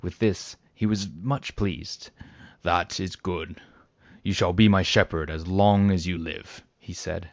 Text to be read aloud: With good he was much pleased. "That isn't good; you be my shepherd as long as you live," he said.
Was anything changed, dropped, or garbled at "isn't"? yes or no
yes